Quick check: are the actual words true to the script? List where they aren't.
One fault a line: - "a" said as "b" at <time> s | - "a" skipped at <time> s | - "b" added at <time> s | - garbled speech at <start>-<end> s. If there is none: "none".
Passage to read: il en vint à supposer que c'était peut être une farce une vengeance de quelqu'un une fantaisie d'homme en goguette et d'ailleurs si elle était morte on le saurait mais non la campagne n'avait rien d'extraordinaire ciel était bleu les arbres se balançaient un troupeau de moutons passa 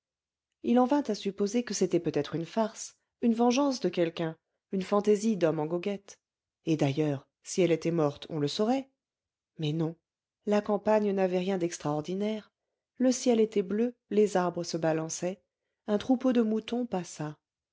- "le" added at 12.9 s